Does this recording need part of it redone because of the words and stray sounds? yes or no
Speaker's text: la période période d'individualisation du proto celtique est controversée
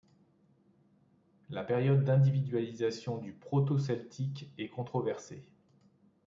yes